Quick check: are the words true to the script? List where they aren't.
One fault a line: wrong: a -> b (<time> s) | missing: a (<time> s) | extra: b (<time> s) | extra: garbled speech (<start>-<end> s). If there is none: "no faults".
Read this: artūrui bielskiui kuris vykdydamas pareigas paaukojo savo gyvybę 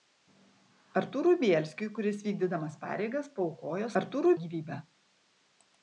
wrong: savo -> artūrui (4.0 s)